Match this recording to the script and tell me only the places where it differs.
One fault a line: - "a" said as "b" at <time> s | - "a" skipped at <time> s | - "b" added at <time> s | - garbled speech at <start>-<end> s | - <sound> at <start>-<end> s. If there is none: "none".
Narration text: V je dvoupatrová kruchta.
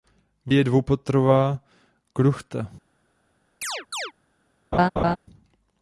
- chirp at 3.6-4.1 s
- laugh at 4.7-5.2 s